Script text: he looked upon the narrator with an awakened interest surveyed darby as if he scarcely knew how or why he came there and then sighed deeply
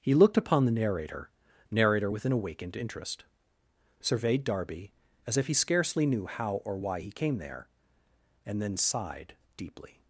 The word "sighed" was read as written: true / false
true